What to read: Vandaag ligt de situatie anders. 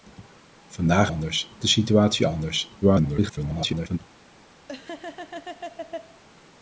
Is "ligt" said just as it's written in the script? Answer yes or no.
no